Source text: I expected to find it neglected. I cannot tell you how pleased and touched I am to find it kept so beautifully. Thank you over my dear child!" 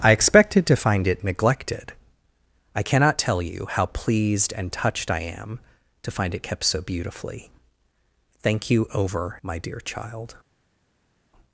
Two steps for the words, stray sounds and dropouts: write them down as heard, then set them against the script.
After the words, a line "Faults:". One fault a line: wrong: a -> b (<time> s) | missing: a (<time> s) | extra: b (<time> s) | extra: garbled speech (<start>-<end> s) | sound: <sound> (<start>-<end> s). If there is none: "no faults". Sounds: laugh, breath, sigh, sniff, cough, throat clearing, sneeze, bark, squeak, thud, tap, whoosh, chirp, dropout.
I expected to find it neglected. I cannot tell you how pleased and touched I am to find it kept so beautifully. Thank you over my dear child!"
Faults:
no faults